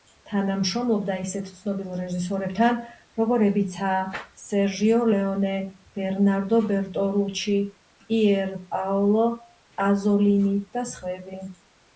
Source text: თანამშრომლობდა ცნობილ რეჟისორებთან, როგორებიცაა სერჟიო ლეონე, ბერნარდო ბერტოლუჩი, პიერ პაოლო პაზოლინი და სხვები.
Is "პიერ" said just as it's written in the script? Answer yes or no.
yes